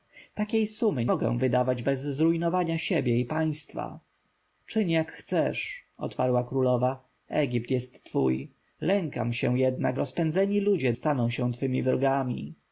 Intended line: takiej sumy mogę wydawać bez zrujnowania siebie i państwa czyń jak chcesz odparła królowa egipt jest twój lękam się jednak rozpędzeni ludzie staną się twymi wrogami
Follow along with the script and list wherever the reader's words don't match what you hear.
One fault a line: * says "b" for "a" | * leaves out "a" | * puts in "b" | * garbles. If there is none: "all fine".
all fine